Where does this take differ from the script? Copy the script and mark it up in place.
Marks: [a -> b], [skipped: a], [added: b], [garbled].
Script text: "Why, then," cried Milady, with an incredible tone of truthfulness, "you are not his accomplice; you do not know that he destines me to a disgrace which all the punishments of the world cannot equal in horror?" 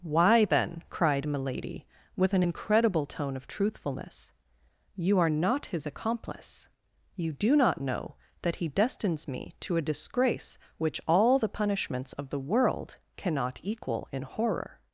"Why, then," cried Milady, with an incredible tone of truthfulness, "you are not his accomplice; you do not know that he destines me to a disgrace which all the punishments of the world cannot equal in horror?"